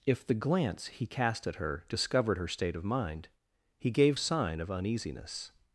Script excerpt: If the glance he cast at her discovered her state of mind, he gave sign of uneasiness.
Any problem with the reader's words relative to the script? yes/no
no